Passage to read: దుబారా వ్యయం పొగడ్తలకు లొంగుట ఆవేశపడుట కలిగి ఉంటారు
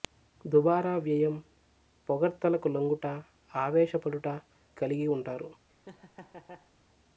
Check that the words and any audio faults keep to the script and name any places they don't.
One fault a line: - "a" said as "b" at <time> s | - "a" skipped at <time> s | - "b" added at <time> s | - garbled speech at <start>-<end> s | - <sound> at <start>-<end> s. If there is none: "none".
- laugh at 5.7-6.7 s